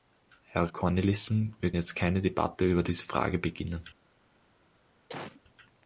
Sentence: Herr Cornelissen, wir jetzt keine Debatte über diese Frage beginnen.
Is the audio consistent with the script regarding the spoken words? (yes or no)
yes